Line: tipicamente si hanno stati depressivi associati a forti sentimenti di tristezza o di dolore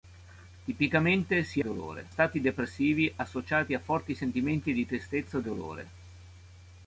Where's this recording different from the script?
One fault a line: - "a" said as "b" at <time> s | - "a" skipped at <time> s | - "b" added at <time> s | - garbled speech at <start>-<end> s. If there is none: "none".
- "hanno" said as "dolore" at 1.6 s
- "di" skipped at 5.4 s